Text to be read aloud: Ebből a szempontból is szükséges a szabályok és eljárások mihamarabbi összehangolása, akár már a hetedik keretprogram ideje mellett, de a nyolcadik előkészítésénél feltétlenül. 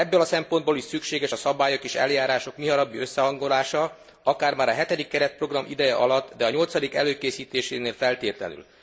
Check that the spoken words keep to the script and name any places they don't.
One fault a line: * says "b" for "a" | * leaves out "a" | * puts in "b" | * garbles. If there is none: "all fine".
* says "alatt" for "mellett"